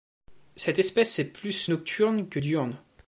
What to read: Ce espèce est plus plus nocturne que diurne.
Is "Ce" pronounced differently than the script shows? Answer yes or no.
yes